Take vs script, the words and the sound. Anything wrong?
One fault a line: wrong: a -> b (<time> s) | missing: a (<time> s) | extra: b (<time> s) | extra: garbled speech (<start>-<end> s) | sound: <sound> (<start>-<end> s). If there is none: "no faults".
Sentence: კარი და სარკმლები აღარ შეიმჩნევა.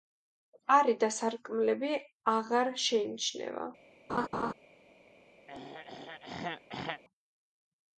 sound: laugh (4.1-4.5 s)
sound: throat clearing (5.5-7.0 s)